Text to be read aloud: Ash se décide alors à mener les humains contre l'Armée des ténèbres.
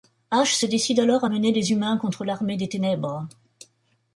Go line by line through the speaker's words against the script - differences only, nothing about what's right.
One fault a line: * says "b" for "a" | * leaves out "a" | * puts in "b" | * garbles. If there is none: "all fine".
all fine